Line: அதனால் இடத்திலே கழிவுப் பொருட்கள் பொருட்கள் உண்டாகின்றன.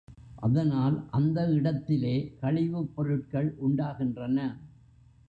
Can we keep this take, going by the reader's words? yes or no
no